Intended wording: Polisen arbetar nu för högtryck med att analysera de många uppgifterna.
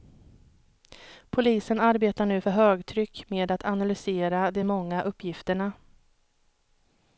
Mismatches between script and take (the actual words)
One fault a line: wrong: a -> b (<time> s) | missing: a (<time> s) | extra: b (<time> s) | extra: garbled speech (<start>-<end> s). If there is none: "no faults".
no faults